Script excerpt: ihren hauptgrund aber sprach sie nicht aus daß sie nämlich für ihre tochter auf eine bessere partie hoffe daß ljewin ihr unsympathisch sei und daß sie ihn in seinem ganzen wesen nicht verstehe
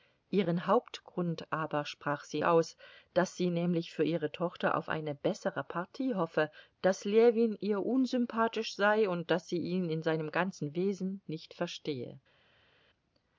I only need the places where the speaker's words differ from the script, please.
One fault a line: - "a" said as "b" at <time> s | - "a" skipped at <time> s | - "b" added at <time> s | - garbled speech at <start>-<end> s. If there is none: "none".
- "nicht" skipped at 2.4 s